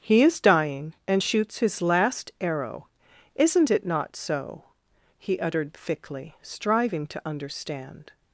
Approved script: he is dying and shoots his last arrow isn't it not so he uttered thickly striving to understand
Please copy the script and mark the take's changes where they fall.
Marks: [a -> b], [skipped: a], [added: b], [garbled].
he is dying and shoots his last arrow isn't it not so he uttered thickly striving to understand